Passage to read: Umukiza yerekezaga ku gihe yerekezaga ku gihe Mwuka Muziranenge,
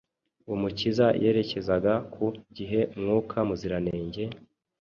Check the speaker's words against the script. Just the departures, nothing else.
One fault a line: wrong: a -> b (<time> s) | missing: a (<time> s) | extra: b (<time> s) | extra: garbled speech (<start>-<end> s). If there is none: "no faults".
missing: yerekezaga ku gihe (2.8 s)